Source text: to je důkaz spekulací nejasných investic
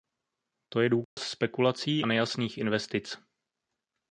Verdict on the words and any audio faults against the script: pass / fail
fail